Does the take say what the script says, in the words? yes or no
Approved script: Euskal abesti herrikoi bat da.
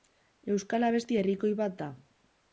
yes